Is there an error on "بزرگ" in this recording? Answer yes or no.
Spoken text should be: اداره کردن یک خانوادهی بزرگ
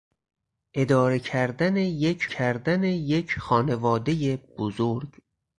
no